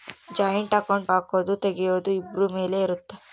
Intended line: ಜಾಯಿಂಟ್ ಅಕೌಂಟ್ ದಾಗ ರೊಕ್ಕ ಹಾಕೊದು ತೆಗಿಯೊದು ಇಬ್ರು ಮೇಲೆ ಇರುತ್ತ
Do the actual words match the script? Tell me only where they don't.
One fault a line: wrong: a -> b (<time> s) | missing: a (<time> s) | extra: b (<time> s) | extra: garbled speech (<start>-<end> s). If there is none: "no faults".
missing: ದಾಗ ರೊಕ್ಕ (1.1 s)